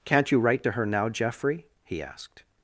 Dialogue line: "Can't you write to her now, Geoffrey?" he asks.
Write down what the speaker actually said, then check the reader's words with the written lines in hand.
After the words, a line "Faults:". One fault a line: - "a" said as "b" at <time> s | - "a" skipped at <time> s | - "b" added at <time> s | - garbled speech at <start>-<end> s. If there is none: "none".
"Can't you write to her now, Geoffrey?" he asked.
Faults:
- "asks" said as "asked" at 2.0 s